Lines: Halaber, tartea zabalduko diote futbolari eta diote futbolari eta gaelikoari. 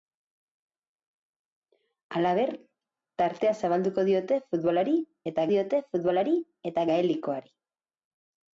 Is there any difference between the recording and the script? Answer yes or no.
no